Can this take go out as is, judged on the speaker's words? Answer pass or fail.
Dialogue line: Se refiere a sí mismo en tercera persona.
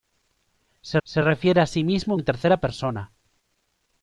fail